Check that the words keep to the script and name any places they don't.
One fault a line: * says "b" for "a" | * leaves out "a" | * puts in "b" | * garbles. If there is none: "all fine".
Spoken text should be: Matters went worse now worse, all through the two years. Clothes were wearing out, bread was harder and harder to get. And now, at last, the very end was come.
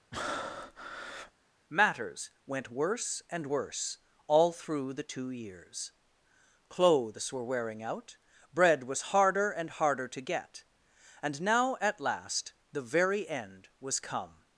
* says "and" for "now"